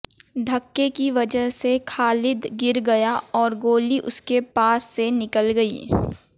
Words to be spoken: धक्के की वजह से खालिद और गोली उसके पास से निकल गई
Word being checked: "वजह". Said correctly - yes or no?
yes